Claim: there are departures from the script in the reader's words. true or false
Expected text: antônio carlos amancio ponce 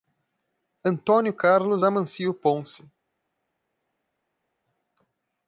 false